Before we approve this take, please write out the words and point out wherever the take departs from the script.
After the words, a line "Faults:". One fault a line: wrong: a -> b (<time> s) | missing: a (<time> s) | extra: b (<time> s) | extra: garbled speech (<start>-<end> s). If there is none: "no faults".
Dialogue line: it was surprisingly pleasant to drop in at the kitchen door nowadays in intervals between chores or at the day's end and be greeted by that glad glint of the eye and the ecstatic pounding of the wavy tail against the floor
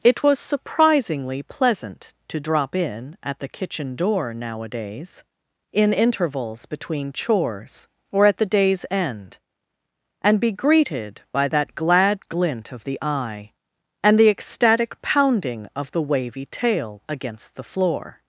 it was surprisingly pleasant to drop in at the kitchen door nowadays in intervals between chores or at the day's end and be greeted by that glad glint of the eye and the ecstatic pounding of the wavy tail against the floor
Faults:
no faults